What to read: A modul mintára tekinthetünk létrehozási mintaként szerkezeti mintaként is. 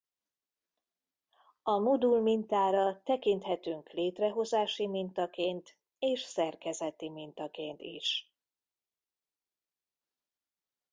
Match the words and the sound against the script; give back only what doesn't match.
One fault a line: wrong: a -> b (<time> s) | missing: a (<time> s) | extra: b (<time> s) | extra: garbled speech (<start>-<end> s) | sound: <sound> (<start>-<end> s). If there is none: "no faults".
extra: és (6.0 s)